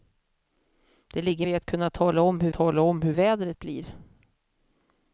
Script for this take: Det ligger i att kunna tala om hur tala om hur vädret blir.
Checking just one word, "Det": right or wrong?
right